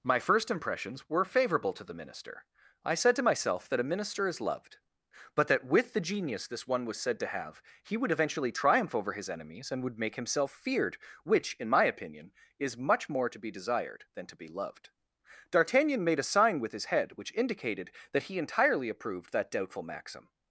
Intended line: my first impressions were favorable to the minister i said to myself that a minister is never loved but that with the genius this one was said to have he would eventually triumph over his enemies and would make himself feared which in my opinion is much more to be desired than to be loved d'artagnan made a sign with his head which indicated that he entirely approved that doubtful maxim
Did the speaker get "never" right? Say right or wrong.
wrong